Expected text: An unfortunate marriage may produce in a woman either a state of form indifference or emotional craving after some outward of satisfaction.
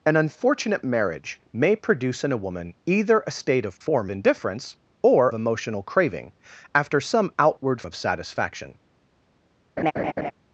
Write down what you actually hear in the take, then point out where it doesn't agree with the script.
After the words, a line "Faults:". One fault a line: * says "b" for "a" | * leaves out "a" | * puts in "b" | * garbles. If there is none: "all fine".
An unfortunate marriage may produce in a woman either a state of form indifference or emotional craving after some outward of satisfaction.
Faults:
all fine